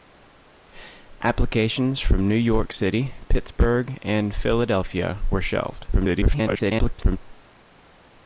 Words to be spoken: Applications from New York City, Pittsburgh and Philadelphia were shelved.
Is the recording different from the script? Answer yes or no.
yes